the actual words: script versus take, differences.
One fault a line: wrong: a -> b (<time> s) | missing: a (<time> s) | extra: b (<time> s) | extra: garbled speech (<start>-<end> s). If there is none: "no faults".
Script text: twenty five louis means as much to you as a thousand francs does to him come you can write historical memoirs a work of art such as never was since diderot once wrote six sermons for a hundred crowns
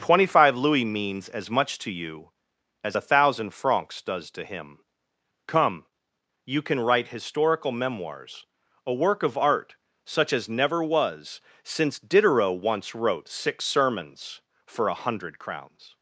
no faults